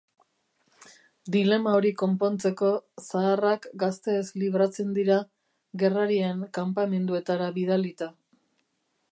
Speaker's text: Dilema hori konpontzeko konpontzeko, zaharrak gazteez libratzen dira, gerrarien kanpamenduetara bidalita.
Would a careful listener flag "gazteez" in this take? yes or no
no